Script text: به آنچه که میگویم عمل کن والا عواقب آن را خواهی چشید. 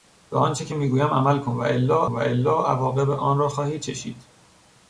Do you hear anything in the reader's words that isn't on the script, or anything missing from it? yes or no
yes